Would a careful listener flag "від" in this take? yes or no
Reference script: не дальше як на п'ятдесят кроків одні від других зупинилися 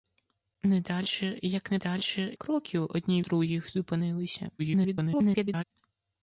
yes